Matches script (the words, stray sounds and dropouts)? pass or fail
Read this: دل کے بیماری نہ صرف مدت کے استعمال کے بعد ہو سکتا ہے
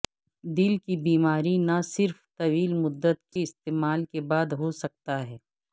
fail